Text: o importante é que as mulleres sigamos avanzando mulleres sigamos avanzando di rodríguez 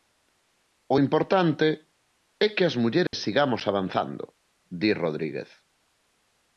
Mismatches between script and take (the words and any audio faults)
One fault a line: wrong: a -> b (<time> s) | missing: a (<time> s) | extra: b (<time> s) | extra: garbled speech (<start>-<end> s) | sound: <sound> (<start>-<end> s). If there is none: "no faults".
sound: dropout (3.1-3.1 s)
missing: mulleres sigamos avanzando (4.2 s)